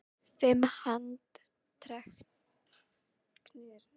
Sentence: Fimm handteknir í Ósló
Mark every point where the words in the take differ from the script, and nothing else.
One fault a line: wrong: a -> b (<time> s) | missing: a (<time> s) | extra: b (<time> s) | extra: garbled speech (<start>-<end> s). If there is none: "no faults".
no faults